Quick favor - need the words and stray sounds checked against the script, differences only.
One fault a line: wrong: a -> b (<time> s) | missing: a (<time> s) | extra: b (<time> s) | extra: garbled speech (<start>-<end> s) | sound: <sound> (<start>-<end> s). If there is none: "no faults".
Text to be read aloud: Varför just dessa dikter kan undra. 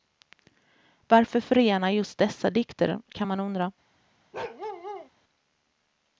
extra: förena (1.4 s)
extra: man (3.2 s)
sound: bark (4.3-5.1 s)